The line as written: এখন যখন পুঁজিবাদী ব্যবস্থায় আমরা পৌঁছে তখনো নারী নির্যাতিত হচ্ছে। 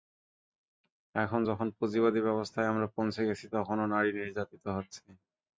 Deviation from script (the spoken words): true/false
true